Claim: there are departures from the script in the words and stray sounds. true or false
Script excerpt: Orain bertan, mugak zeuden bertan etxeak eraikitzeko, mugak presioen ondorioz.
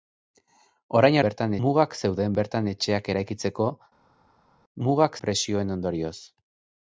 false